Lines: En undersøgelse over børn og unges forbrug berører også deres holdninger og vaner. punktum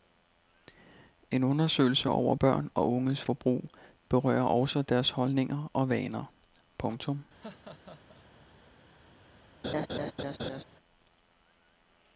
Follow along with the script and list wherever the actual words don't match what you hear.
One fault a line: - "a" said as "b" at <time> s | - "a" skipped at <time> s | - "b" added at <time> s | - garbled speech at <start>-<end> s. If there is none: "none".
none